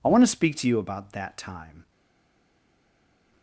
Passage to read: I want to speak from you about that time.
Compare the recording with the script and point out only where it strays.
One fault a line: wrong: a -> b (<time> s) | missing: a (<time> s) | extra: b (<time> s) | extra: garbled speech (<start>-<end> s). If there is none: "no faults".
wrong: from -> to (0.6 s)